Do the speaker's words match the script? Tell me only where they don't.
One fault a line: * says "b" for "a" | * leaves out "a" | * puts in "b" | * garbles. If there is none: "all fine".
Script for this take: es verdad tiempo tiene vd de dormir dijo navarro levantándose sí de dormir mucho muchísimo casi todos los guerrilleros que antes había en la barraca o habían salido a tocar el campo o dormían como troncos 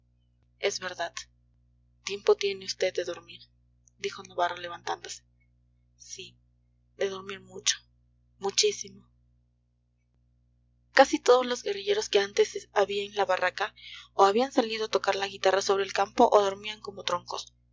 * puts in "la guitarra sobre"